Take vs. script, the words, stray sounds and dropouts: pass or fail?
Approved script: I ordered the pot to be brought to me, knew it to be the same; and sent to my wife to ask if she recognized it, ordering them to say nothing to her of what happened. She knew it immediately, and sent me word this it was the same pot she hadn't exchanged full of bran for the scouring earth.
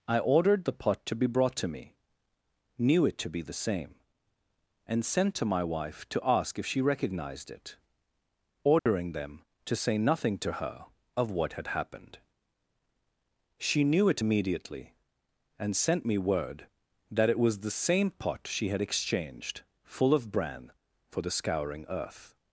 fail